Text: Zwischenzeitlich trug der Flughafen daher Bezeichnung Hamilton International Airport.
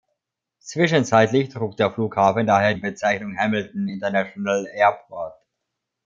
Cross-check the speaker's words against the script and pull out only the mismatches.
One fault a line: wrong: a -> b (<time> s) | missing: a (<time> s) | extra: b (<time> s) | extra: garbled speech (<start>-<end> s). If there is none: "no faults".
no faults